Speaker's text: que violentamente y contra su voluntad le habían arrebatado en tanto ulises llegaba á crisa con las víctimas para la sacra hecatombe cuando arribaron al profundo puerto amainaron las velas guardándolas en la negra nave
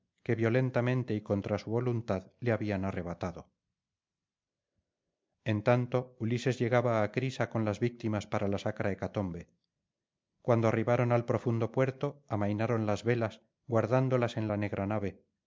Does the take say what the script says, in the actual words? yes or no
yes